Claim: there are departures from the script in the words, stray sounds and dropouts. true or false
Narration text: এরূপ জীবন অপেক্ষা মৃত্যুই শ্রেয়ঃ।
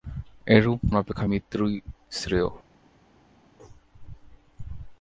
true